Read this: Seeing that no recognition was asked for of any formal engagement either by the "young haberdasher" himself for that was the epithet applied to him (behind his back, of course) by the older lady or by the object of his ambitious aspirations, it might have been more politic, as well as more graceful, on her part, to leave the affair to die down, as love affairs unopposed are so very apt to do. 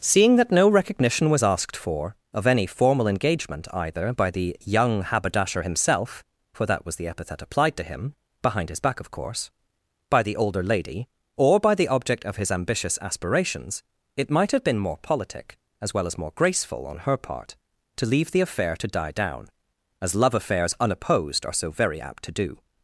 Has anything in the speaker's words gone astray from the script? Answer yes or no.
no